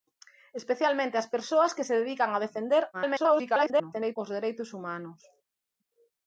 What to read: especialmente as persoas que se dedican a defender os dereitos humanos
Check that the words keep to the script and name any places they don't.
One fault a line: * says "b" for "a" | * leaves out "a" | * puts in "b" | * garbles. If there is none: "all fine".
* garbles